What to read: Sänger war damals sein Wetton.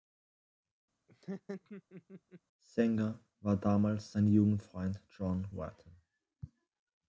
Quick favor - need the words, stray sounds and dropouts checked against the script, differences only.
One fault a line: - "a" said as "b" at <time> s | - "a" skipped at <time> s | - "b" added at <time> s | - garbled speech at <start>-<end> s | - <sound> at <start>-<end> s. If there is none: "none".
- laugh at 1.1-2.4 s
- "Jugendfreund John" added at 4.3 s